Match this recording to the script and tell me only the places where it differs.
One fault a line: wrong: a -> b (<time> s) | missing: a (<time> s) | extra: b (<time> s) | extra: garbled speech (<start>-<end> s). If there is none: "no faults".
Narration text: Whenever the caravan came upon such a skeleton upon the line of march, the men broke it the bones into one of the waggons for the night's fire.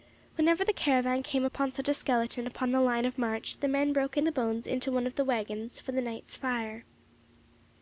no faults